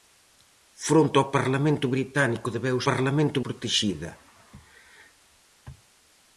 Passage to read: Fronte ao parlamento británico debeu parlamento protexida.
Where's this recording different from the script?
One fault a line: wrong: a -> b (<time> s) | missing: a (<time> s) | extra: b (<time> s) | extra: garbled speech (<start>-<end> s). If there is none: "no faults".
no faults